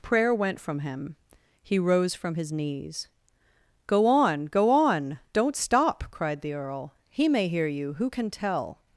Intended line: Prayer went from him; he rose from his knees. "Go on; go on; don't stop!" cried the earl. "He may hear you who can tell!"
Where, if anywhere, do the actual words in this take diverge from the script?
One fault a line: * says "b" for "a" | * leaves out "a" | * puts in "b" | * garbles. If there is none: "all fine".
all fine